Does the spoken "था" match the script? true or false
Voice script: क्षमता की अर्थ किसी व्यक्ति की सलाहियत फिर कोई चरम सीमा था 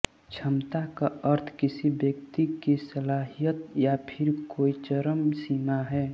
false